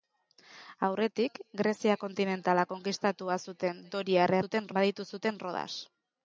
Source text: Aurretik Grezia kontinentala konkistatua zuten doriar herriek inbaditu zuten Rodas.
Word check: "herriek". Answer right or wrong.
wrong